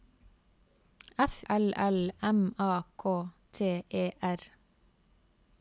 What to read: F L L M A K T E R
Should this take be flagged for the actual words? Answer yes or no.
no